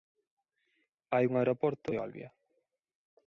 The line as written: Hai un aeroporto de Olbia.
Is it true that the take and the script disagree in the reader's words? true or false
false